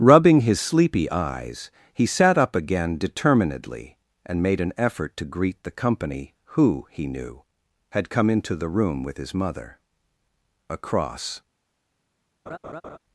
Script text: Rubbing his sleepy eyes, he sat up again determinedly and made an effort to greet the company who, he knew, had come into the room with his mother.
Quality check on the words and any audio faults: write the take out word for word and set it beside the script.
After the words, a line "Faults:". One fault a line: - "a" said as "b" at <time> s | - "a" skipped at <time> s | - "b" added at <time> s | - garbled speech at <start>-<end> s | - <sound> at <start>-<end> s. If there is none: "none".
Rubbing his sleepy eyes, he sat up again determinedly and made an effort to greet the company who, he knew, had come into the room with his mother. Across
Faults:
- "Across" added at 10.7 s
- laugh at 12.5-13.0 s